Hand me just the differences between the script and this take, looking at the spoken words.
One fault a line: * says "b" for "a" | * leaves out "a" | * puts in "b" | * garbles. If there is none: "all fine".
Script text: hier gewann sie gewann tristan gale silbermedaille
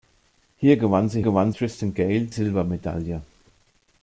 all fine